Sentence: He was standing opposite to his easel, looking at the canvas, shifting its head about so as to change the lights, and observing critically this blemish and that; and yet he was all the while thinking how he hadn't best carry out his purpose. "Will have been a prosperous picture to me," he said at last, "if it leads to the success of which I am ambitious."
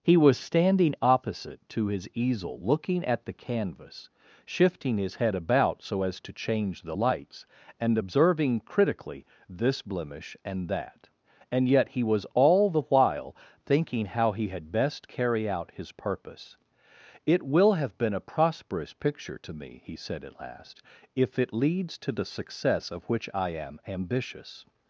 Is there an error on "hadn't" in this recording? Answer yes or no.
yes